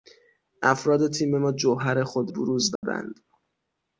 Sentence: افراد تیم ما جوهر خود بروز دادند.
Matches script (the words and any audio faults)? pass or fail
fail